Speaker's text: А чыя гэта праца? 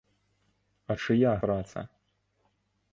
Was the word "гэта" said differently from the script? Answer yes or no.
yes